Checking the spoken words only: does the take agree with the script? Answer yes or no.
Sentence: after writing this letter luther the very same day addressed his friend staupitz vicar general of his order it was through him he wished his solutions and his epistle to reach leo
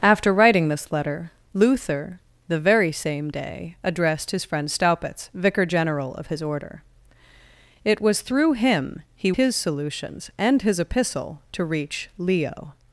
no